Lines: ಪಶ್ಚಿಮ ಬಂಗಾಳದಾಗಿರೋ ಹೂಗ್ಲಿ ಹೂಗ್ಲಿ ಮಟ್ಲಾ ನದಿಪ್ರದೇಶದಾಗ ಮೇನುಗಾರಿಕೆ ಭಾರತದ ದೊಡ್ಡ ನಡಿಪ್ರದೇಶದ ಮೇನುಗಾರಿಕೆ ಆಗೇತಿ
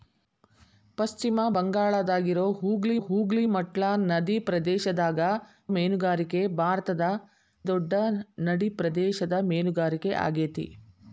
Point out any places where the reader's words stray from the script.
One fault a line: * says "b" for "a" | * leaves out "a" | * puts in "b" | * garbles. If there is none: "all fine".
all fine